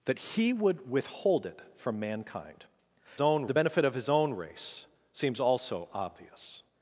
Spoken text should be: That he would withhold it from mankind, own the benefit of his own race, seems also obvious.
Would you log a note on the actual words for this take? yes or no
no